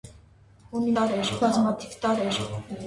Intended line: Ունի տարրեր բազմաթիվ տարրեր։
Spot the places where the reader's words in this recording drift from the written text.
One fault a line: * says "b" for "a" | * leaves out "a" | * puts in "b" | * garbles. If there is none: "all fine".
all fine